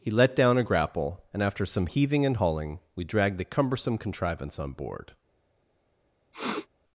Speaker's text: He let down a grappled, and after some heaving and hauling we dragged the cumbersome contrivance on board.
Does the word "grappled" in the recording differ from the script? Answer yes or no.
yes